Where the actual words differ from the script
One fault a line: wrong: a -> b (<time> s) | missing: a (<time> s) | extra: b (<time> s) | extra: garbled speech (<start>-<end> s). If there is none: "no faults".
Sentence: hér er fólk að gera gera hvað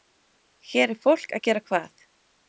missing: gera (1.6 s)